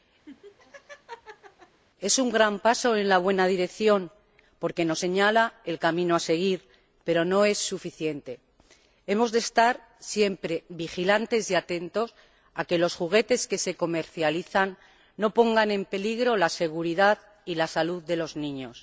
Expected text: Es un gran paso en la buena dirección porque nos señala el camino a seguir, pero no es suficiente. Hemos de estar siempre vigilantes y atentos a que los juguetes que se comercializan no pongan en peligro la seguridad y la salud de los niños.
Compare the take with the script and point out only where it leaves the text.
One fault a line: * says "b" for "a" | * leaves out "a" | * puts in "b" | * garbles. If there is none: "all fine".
all fine